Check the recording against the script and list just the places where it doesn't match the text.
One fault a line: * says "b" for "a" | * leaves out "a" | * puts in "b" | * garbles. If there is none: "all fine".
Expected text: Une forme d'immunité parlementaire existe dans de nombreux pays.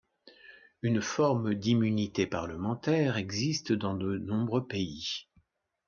all fine